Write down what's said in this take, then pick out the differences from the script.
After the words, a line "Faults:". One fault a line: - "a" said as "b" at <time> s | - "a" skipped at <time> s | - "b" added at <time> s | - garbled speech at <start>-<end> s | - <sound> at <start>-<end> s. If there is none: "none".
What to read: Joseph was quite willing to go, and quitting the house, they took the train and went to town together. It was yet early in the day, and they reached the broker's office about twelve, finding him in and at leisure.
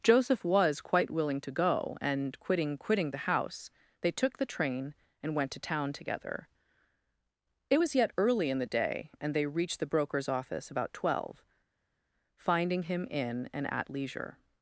Joseph was quite willing to go, and quitting quitting the house, they took the train and went to town together. It was yet early in the day, and they reached the broker's office about twelve, finding him in and at leisure.
Faults:
- "quitting" added at 2.8 s